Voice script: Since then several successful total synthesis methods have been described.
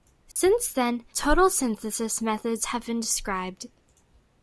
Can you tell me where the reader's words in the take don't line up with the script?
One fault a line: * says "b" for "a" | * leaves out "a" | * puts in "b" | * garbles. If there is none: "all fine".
* leaves out "several successful"